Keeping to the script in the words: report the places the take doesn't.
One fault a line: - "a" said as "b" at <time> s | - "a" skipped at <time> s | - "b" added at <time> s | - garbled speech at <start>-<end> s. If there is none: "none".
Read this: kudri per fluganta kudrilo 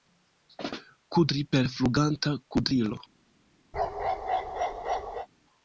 none